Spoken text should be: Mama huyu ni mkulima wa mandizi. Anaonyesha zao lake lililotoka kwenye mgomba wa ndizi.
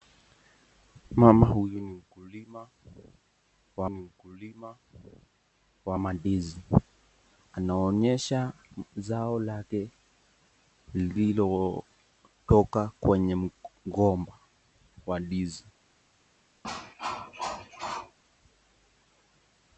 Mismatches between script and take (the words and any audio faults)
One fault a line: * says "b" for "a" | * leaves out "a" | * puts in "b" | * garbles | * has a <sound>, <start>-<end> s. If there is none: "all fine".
* puts in "ni mkulima wa"
* has a cough, 16.6-18.2 s